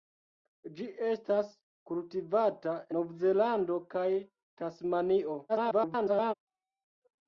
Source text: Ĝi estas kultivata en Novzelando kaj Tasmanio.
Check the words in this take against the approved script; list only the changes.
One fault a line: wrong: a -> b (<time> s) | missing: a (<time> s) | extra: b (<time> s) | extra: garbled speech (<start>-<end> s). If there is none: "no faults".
missing: en (2.8 s)
extra: garbled speech (5.5-6.3 s)